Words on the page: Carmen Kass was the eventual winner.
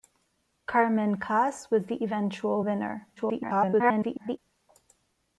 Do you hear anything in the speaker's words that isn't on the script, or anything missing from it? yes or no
yes